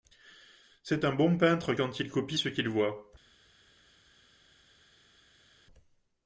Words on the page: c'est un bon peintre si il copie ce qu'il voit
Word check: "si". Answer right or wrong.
wrong